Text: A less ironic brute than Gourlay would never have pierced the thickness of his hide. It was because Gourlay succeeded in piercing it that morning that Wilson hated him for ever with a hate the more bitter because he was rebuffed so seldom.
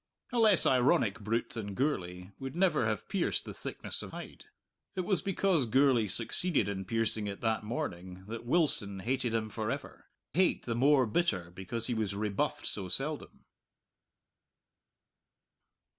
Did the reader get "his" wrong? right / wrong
wrong